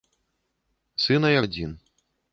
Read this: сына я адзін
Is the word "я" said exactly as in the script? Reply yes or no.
yes